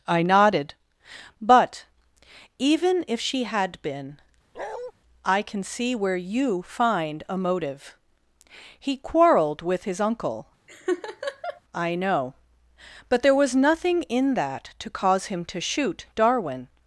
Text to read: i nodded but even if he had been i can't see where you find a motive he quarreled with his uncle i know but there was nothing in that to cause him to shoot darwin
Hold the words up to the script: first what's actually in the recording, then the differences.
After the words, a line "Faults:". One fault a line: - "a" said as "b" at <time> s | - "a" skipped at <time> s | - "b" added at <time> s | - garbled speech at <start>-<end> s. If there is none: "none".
i nodded but even if she had been i can see where you find a motive he quarreled with his uncle i know but there was nothing in that to cause him to shoot darwin
Faults:
- "he" said as "she" at 3.2 s
- "can't" said as "can" at 5.4 s